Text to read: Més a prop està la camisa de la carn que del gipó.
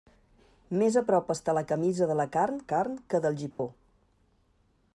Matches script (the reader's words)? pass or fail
fail